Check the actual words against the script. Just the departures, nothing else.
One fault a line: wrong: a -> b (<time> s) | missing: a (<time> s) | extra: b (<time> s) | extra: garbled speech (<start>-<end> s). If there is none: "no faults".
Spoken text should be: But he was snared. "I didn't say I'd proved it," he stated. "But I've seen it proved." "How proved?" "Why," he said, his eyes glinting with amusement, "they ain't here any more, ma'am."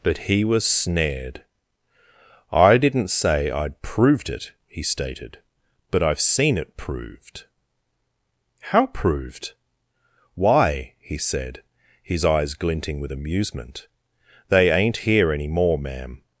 no faults